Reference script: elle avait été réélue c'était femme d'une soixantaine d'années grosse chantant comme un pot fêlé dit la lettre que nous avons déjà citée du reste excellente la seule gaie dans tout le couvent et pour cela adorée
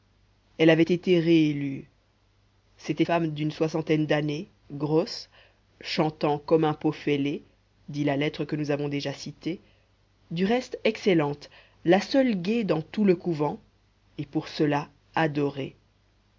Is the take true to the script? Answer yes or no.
yes